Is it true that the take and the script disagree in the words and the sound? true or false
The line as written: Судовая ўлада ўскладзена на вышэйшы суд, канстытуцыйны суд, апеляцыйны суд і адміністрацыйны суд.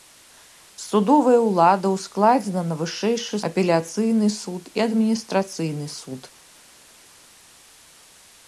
true